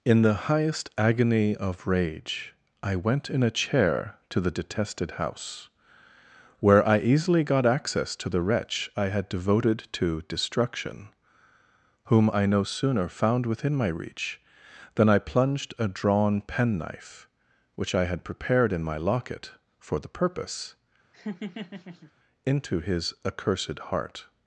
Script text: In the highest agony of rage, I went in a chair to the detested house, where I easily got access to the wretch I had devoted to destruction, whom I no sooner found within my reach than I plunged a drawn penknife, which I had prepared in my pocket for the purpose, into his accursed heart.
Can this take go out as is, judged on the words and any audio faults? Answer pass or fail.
fail